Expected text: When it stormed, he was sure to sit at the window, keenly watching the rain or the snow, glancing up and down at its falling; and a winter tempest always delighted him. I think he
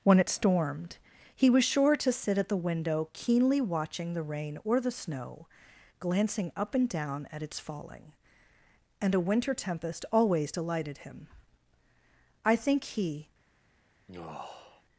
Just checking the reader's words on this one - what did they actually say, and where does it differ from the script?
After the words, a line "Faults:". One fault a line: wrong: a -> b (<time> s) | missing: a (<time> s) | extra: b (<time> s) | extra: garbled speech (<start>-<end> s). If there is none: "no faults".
When it stormed, he was sure to sit at the window, keenly watching the rain or the snow, glancing up and down at its falling; and a winter tempest always delighted him. I think he
Faults:
no faults